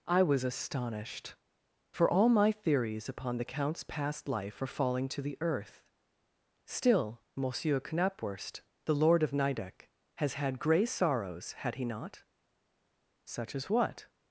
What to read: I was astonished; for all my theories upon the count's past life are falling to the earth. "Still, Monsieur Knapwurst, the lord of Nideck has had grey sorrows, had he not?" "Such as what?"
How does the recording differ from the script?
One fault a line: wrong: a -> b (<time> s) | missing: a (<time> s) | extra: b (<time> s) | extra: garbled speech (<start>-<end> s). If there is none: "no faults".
no faults